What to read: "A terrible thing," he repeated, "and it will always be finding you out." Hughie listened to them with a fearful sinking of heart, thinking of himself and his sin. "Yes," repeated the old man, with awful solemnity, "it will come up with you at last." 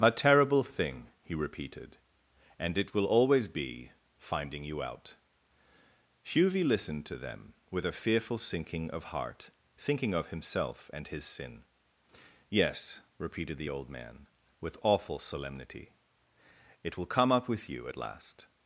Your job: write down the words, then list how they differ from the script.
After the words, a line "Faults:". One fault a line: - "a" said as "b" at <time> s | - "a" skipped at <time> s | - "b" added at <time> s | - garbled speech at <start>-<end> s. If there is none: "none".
"A terrible thing," he repeated, "and it will always be finding you out." Hughie listened to them with a fearful sinking of heart, thinking of himself and his sin. "Yes," repeated the old man, with awful solemnity, "it will come up with you at last."
Faults:
none